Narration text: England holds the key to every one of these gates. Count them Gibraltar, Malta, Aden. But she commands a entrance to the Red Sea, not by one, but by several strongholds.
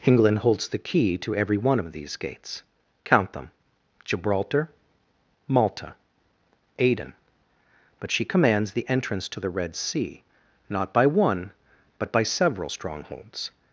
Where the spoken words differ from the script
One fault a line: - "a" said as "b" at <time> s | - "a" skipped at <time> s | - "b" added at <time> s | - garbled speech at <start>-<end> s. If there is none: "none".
- "a" said as "the" at 8.7 s